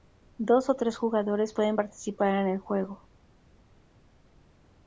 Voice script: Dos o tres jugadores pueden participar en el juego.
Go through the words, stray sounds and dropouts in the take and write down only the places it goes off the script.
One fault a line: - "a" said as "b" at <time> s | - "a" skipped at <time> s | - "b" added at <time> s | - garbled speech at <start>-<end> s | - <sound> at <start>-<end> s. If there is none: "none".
none